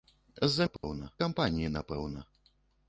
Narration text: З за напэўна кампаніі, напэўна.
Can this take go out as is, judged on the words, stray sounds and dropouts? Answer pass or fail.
fail